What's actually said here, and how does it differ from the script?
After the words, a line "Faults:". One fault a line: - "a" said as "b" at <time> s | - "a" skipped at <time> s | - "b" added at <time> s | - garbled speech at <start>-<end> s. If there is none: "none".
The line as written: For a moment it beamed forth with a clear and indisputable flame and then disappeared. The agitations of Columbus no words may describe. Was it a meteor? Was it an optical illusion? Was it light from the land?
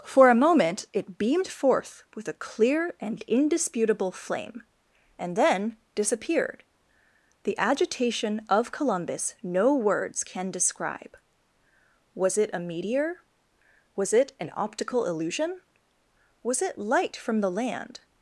For a moment it beamed forth with a clear and indisputable flame and then disappeared. The agitation of Columbus no words can describe. Was it a meteor? Was it an optical illusion? Was it light from the land?
Faults:
- "agitations" said as "agitation" at 7.6 s
- "may" said as "can" at 10.2 s